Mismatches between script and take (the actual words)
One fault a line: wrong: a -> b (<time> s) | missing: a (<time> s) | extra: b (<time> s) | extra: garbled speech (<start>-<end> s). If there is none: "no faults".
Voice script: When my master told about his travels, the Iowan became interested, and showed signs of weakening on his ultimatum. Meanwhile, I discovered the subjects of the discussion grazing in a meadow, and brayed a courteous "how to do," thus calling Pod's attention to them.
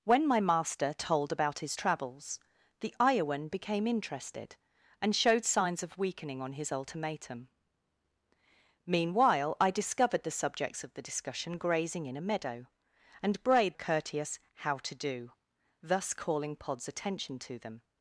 no faults